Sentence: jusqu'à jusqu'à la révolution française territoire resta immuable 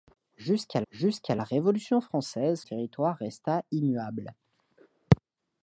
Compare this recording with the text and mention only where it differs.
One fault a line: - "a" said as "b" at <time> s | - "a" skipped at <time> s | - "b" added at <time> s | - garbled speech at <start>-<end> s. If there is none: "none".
none